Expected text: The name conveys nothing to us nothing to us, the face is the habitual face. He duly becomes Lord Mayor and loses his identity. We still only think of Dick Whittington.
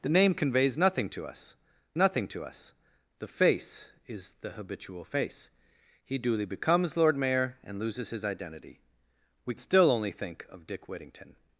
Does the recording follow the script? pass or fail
pass